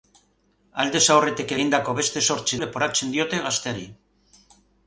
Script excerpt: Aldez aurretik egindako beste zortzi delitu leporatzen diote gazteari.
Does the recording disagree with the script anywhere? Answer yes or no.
yes